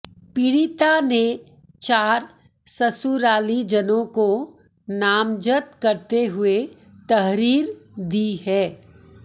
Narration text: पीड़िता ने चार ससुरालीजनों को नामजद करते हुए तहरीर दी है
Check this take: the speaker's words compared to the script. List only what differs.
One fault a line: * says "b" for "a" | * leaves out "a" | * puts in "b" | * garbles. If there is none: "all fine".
all fine